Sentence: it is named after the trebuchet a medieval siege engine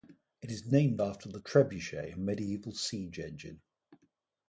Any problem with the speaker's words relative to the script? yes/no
no